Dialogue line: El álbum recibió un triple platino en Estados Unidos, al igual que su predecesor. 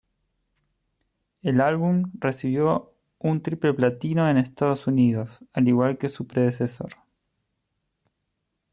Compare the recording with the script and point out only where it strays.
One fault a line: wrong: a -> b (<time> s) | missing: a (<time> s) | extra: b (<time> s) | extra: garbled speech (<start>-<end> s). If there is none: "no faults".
no faults